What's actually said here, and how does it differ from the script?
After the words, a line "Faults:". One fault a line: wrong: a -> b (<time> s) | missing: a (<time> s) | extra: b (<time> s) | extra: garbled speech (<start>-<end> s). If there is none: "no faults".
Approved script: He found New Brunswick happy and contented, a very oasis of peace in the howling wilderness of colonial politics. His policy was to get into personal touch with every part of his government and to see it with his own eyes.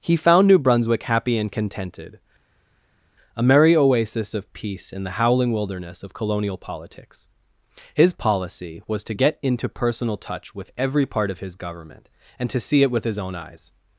He found New Brunswick happy and contented, a merry oasis of peace in the howling wilderness of colonial politics. His policy was to get into personal touch with every part of his government and to see it with his own eyes.
Faults:
wrong: very -> merry (3.4 s)